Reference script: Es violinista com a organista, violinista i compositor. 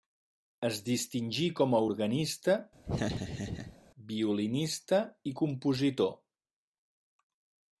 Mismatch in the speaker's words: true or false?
true